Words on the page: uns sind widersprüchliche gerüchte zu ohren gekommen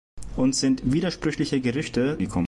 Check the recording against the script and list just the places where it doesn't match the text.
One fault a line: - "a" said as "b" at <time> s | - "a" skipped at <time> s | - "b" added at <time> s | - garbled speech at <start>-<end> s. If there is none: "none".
- "zu ohren" skipped at 2.2 s